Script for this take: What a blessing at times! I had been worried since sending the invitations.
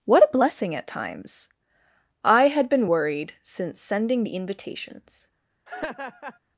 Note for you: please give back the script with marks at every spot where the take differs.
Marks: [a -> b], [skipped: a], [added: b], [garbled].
What a blessing at times! I had been worried since sending the invitations.